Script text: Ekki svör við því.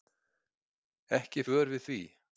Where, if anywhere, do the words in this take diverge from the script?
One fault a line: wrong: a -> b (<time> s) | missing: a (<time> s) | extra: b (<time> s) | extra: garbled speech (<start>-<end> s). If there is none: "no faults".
no faults